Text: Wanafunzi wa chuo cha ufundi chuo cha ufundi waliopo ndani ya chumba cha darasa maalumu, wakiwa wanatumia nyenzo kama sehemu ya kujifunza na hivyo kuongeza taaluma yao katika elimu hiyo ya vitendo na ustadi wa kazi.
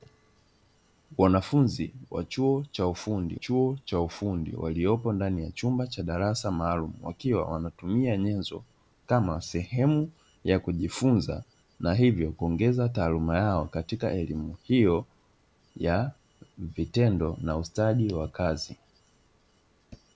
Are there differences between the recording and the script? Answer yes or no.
no